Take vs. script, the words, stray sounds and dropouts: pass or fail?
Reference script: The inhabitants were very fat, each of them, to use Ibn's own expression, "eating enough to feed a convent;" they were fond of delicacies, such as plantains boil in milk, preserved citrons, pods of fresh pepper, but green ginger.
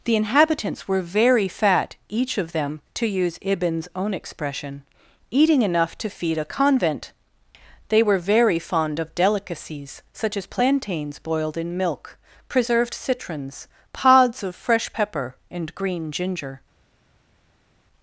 fail